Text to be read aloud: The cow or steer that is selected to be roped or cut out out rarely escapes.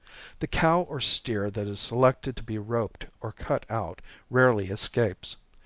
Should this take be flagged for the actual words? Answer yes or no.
yes